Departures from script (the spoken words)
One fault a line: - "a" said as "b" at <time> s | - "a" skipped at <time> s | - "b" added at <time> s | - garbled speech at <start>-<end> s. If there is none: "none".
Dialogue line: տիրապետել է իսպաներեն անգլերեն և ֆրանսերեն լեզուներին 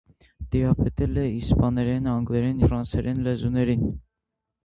- "և" skipped at 2.6 s